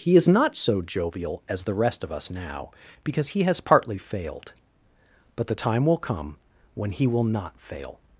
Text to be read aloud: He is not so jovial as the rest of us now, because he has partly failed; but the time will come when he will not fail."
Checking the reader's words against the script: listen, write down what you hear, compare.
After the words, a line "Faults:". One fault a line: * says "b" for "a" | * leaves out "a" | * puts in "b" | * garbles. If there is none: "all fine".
He is not so jovial as the rest of us now, because he has partly failed; but the time will come when he will not fail."
Faults:
all fine